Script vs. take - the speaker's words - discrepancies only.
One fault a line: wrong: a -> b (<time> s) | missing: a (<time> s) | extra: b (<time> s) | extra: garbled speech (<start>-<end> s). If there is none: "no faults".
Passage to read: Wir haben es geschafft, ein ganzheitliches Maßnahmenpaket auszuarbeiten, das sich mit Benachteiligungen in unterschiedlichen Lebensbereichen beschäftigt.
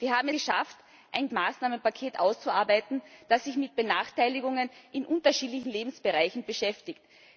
missing: es (0.3 s)
missing: ganzheitliches (1.3 s)